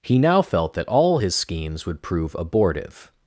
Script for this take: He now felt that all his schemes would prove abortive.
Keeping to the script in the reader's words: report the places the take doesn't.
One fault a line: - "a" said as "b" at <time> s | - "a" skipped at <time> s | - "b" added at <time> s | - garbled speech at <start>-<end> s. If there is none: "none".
none